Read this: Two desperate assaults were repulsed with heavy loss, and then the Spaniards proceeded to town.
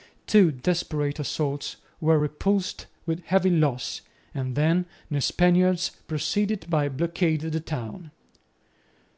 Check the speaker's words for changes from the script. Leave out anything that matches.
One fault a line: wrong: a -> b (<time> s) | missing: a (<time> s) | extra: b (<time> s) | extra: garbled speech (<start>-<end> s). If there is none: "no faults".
extra: blockade the (6.9 s)